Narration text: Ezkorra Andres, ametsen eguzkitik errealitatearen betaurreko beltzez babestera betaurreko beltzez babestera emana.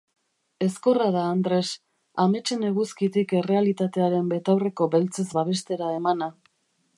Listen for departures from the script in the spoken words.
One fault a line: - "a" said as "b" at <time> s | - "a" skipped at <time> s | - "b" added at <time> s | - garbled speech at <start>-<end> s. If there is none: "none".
- "da" added at 1.1 s
- "betaurreko beltzez babestera" skipped at 5.9 s